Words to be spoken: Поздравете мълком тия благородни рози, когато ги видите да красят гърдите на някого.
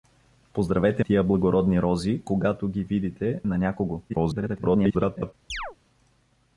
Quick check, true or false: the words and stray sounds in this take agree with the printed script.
false